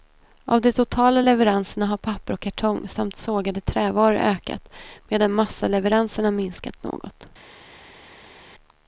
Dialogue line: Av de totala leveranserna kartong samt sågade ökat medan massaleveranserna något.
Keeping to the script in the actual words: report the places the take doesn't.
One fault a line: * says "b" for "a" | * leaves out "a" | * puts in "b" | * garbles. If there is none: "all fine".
* puts in "har papper och"
* puts in "trävaror"
* puts in "minskat"